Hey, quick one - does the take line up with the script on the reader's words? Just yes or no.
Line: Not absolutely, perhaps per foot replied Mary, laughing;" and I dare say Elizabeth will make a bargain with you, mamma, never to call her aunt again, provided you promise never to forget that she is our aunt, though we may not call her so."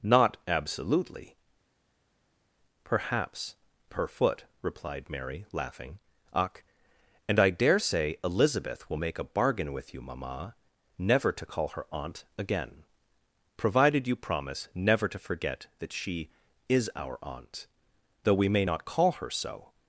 no